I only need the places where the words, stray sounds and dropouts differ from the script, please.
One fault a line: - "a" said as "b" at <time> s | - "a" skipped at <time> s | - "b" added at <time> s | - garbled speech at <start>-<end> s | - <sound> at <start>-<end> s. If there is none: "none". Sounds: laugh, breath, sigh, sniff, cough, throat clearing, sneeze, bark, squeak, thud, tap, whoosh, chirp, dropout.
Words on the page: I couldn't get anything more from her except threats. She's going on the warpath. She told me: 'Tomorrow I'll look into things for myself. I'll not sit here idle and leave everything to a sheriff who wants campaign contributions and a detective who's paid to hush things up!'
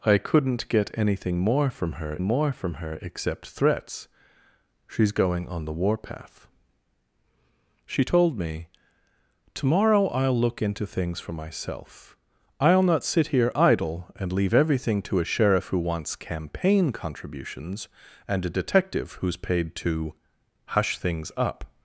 - "more from her" added at 2.2 s